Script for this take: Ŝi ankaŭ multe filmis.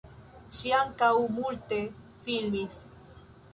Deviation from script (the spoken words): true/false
false